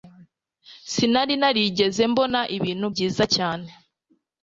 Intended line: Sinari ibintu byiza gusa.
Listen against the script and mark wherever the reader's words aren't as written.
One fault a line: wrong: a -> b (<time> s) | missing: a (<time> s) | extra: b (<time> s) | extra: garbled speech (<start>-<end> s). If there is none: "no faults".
extra: narigeze mbona (1.4 s)
wrong: gusa -> cyane (3.3 s)